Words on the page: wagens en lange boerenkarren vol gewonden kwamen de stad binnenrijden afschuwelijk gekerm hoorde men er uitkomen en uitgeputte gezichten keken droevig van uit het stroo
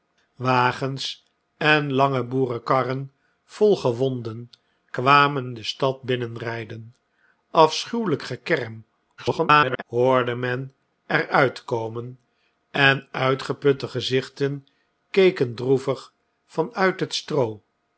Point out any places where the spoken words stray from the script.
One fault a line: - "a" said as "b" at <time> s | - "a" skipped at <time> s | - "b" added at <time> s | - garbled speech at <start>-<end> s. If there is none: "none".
- garbled speech at 9.2-9.8 s